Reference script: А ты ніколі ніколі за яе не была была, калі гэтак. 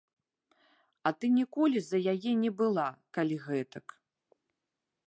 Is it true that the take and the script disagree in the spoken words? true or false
true